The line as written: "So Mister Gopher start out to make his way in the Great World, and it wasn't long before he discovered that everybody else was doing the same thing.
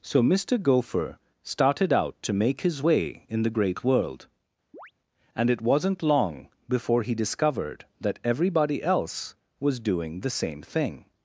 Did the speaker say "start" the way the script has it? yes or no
no